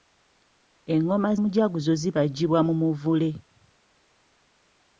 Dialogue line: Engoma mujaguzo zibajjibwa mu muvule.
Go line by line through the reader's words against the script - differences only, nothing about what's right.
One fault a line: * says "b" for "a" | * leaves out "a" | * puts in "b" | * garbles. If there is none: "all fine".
all fine